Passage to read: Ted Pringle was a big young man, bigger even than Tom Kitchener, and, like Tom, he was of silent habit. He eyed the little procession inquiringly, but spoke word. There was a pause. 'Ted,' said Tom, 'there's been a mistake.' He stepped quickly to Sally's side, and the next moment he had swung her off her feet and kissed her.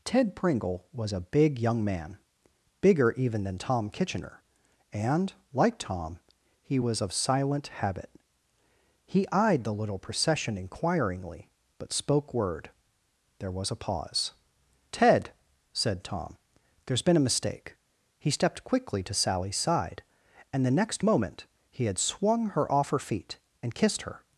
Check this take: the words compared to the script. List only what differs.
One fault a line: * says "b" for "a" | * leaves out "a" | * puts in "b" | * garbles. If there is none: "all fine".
all fine